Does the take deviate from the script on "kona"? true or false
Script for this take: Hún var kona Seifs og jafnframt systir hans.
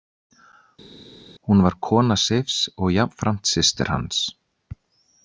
false